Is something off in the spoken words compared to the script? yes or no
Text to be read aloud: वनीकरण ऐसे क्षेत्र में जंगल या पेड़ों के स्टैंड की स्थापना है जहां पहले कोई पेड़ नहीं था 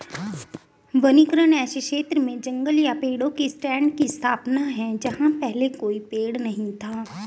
no